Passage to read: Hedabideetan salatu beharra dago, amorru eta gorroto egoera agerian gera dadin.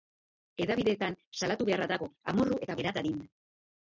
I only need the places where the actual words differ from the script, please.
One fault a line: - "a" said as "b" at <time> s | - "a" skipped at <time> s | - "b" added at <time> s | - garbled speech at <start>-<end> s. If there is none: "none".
- "gorroto egoera agerian" skipped at 2.8 s